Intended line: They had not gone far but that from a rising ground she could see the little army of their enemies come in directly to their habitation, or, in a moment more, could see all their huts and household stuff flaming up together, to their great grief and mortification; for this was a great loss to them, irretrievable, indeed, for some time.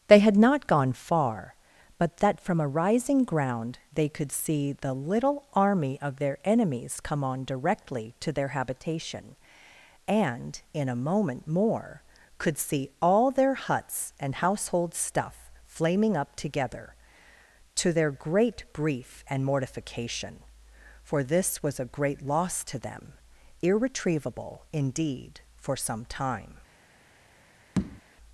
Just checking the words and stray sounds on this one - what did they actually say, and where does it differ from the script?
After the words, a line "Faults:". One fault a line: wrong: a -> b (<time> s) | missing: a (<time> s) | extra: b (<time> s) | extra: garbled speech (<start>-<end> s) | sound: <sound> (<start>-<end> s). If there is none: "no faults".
They had not gone far but that from a rising ground they could see the little army of their enemies come on directly to their habitation, and, in a moment more, could see all their huts and household stuff flaming up together, to their great grief and mortification; for this was a great loss to them, irretrievable, indeed, for some time.
Faults:
wrong: she -> they (3.9 s)
wrong: in -> on (7.2 s)
wrong: or -> and (10.1 s)
sound: tap (27.8-28.0 s)